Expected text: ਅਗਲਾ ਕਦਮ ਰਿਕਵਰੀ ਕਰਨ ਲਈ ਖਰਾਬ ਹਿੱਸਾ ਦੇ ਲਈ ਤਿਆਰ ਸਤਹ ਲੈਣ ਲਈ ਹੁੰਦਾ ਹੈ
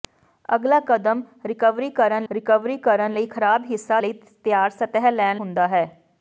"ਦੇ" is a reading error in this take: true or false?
true